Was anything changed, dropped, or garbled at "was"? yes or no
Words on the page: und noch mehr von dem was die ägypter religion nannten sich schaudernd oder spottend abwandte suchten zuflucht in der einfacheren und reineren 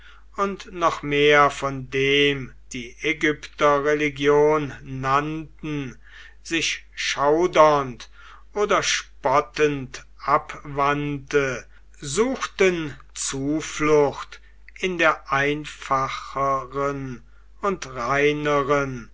yes